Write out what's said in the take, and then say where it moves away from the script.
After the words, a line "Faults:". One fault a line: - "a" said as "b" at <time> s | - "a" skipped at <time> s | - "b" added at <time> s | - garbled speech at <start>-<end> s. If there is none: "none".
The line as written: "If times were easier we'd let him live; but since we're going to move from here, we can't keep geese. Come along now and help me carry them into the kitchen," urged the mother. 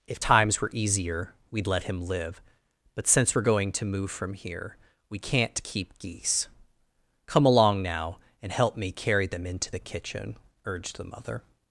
"If times were easier we'd let him live; but since we're going to move from here, we can't keep geese. Come along now and help me carry them into the kitchen," urged the mother.
Faults:
none